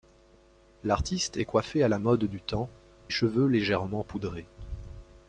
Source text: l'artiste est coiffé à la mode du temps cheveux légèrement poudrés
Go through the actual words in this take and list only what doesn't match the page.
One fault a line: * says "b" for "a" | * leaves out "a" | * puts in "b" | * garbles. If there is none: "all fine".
all fine